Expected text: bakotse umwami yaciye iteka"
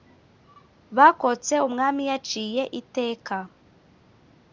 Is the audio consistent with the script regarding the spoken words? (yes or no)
yes